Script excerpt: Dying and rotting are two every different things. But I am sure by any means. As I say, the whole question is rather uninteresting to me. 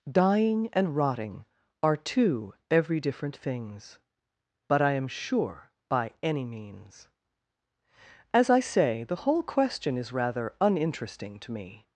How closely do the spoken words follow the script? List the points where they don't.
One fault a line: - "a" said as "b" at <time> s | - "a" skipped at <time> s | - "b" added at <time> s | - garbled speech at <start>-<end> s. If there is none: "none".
none